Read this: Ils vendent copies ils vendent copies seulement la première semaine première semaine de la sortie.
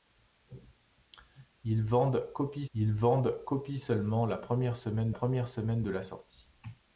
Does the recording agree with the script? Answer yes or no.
yes